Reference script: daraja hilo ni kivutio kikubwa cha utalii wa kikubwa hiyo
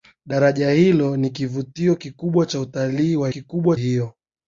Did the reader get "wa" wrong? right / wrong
right